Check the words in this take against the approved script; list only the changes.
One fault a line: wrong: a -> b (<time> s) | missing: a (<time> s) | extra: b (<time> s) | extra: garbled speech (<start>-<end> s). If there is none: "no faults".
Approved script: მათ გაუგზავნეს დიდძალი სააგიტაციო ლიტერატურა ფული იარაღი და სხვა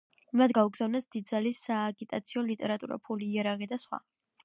no faults